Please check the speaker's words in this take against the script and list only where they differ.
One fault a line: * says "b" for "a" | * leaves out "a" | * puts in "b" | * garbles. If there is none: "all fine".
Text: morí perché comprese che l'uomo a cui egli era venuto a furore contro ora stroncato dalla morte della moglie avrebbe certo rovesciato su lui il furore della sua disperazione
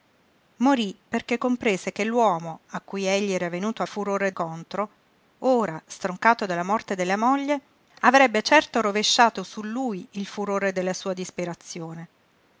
all fine